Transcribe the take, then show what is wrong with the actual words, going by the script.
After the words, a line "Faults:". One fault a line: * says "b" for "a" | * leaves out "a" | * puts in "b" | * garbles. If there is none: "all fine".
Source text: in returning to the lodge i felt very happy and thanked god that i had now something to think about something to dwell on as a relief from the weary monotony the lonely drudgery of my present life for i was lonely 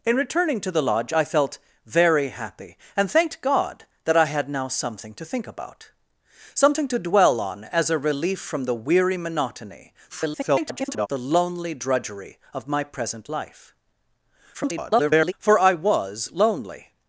in returning to the lodge i felt very happy and thanked god that i had now something to think about something to dwell on as a relief from the weary monotony [garbled] the lonely drudgery of my present life [garbled] for i was lonely
Faults:
* garbles
* garbles